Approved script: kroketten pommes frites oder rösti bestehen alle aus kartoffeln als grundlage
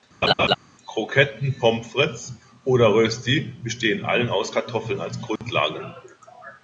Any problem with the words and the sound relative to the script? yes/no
yes